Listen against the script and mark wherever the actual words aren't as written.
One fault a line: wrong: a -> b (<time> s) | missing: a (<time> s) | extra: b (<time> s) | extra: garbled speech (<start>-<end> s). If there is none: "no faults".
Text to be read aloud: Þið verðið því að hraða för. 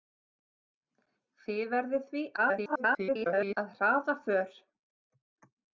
extra: garbled speech (2.4-3.6 s)